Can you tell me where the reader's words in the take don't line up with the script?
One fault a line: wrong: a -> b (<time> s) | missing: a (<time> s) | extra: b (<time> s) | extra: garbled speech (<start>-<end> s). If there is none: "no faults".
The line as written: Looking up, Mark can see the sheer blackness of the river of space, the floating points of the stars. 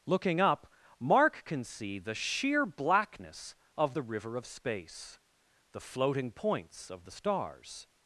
no faults